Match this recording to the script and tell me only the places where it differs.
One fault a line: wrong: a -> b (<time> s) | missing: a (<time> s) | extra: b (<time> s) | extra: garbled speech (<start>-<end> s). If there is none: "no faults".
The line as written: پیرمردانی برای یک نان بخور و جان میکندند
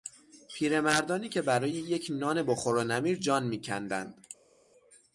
extra: که (1.3 s)
extra: نمیر (2.8 s)